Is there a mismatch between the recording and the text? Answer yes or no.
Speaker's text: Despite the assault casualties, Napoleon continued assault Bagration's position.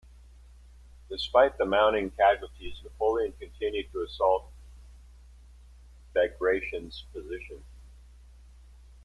yes